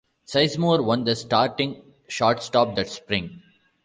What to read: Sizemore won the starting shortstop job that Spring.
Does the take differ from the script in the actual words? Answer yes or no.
yes